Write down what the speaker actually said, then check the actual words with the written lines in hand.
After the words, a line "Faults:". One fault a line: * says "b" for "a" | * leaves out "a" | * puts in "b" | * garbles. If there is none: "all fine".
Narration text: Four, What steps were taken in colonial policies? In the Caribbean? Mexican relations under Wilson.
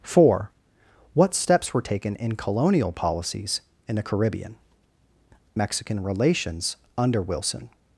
Four, What steps were taken in colonial policies? In the Caribbean? Mexican relations under Wilson.
Faults:
all fine